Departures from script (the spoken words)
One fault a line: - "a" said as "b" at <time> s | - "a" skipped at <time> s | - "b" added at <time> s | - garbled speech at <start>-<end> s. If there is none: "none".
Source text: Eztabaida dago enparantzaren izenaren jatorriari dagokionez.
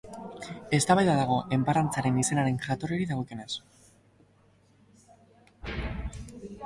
none